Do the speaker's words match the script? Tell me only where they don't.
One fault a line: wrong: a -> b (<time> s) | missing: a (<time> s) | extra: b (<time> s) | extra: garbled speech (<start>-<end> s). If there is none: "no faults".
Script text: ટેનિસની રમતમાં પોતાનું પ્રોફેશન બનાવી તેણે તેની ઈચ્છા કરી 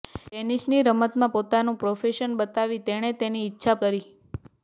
no faults